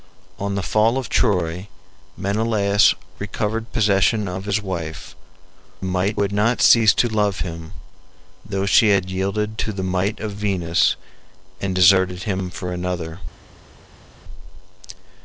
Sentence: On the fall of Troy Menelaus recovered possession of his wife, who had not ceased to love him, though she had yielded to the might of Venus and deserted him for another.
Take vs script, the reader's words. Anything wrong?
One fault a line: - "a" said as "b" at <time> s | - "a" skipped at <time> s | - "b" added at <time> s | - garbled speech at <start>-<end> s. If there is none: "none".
- "who" said as "might" at 5.8 s